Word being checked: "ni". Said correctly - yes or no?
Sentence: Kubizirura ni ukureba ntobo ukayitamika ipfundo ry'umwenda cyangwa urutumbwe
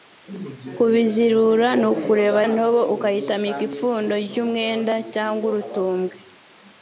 yes